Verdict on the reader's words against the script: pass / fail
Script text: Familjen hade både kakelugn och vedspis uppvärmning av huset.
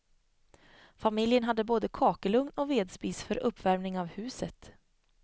fail